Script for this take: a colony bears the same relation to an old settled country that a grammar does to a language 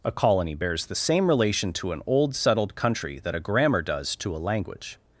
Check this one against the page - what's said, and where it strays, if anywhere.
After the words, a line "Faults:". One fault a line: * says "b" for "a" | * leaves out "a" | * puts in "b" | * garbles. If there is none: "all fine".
a colony bears the same relation to an old settled country that a grammar does to a language
Faults:
all fine